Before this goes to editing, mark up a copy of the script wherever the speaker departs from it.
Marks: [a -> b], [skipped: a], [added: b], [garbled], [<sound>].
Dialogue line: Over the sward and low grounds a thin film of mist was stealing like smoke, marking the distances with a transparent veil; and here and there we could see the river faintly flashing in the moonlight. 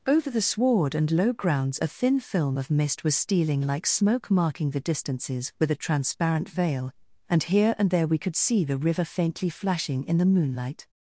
Over the sward and low grounds a thin film of mist was stealing like smoke, marking the distances with a transparent veil; and here and there we could see the river faintly flashing in the moonlight.